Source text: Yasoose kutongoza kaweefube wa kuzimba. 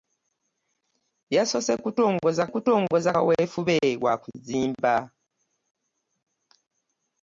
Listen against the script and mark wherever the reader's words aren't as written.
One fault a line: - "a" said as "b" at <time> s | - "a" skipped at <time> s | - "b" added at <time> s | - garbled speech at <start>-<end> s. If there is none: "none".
- "kutongoza" added at 2.5 s